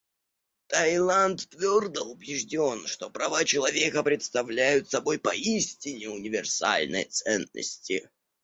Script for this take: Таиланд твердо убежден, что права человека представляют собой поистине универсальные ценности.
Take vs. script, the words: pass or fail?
pass